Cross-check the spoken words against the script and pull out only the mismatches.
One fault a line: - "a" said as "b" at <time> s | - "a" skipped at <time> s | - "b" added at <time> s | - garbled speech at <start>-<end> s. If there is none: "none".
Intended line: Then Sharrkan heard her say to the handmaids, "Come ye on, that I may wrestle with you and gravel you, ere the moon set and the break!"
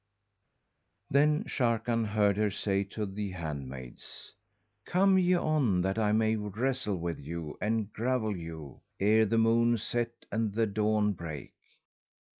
- "dawn" added at 10.7 s